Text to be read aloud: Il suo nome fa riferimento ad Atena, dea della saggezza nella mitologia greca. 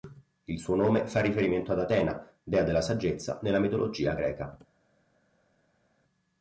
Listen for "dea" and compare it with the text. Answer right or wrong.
right